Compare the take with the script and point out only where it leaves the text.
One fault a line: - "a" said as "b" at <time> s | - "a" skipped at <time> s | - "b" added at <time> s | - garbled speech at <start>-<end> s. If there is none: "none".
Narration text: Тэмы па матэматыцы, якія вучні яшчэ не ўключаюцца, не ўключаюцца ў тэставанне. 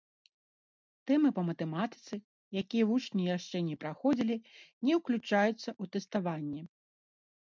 - "ўключаюцца" said as "праходзілі" at 3.8 s